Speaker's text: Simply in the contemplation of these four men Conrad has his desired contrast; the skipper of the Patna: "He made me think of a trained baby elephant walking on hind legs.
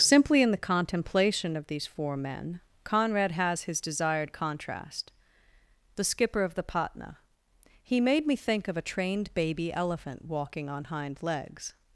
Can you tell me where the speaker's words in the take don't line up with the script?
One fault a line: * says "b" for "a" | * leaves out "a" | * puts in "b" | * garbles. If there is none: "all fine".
all fine